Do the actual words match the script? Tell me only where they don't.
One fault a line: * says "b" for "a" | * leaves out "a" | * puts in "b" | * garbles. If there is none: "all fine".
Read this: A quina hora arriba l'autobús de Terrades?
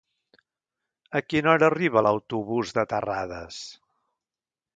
all fine